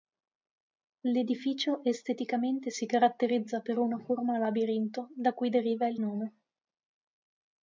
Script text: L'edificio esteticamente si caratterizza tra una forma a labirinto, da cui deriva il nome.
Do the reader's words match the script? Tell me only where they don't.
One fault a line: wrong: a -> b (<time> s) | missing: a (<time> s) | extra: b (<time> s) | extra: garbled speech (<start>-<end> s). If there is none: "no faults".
wrong: tra -> per (3.6 s)